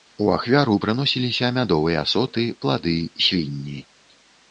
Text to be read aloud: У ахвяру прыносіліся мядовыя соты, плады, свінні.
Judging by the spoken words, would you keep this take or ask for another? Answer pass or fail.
pass